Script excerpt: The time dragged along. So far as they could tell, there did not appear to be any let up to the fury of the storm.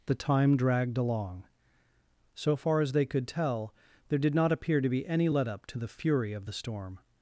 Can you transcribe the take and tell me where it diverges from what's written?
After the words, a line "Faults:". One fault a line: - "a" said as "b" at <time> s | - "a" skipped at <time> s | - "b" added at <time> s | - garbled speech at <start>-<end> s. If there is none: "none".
The time dragged along. So far as they could tell, there did not appear to be any let up to the fury of the storm.
Faults:
none